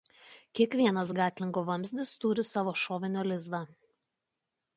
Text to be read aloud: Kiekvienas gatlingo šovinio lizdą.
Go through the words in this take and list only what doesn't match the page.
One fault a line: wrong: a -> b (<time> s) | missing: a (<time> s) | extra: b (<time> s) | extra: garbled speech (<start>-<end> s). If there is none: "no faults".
extra: vamzdis turi savo (1.7 s)